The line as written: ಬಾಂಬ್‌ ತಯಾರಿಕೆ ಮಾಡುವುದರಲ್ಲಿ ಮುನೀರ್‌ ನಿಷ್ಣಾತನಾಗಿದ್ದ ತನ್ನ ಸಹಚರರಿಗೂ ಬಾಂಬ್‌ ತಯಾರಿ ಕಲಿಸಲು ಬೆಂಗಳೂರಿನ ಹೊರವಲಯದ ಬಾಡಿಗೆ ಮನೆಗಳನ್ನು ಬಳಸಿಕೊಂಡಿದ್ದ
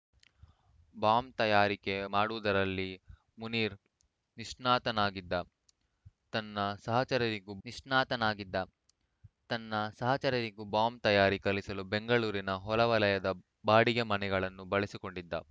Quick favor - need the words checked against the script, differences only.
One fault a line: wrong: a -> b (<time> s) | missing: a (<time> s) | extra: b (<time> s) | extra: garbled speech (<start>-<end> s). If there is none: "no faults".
extra: ನಿಷ್ಣಾತನಾಗಿದ್ದ ತನ್ನ ಸಹಚರರಿಗೂ (7.6 s)